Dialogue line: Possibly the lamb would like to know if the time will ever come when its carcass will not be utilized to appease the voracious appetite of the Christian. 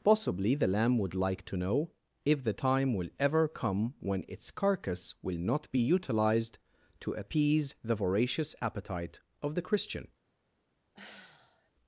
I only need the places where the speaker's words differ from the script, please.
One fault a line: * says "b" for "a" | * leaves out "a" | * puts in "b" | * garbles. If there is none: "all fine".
all fine